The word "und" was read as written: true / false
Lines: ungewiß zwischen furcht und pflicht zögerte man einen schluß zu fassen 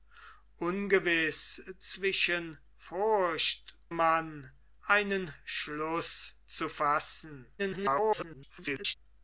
false